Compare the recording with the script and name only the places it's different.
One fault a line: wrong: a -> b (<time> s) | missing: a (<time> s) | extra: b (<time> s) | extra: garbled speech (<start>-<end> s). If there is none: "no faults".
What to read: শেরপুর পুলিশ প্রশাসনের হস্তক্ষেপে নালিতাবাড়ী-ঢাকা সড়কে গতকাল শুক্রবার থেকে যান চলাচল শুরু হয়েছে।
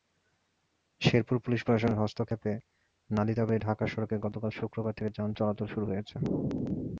no faults